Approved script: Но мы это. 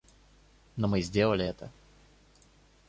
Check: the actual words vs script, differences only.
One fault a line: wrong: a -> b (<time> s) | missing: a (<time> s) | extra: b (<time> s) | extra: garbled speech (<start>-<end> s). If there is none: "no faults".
extra: сделали (1.0 s)